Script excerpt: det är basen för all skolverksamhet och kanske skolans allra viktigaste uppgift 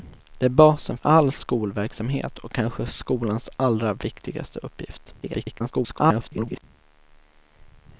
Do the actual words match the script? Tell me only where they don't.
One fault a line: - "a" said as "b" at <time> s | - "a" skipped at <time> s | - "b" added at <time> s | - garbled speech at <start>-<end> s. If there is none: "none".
- "för" skipped at 1.0 s
- garbled speech at 5.2-6.6 s